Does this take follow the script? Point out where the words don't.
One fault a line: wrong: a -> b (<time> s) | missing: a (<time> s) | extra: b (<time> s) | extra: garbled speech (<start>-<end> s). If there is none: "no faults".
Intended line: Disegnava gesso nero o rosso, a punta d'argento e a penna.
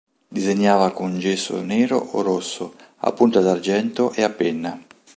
extra: con (0.9 s)